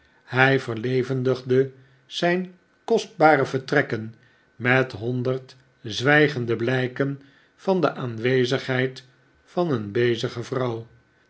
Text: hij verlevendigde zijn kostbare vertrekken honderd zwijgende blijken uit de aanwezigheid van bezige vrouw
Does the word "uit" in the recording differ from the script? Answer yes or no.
yes